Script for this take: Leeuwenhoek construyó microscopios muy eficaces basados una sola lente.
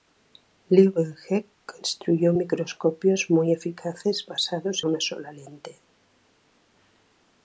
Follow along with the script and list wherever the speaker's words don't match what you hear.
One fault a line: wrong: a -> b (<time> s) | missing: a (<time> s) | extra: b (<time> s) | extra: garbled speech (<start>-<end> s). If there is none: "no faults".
no faults